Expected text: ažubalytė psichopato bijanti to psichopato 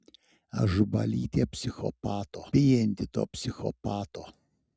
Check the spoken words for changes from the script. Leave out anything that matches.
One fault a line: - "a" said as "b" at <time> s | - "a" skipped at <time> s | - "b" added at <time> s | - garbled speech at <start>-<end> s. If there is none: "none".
none